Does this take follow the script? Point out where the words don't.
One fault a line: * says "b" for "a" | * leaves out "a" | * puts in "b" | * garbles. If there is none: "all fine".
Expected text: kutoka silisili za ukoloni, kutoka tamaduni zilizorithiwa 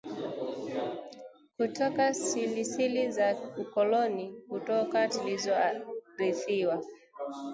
* leaves out "tamaduni"